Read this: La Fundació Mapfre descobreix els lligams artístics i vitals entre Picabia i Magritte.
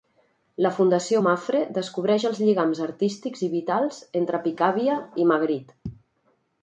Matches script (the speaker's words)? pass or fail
pass